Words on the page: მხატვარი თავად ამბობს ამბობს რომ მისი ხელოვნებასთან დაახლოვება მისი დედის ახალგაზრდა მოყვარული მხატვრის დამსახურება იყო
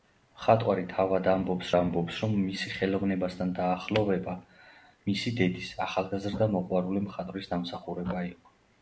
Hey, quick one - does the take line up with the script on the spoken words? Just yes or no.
yes